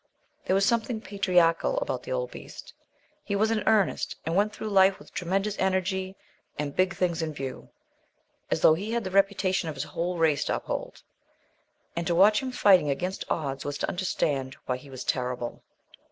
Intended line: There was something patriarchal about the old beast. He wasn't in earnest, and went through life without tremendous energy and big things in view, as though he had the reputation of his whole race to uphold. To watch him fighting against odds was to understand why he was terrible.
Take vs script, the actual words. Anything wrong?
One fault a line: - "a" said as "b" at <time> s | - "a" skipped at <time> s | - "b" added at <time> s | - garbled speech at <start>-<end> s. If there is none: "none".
- "wasn't" said as "was" at 3.4 s
- "without" said as "with" at 5.0 s
- "And" added at 11.9 s